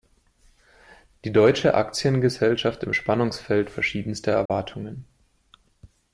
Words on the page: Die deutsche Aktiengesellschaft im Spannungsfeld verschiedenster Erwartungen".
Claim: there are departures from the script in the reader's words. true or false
false